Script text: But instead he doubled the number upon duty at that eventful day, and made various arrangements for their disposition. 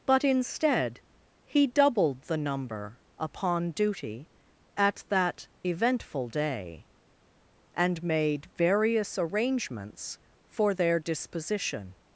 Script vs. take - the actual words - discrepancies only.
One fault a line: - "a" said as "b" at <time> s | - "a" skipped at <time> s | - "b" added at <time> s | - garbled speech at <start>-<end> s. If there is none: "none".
none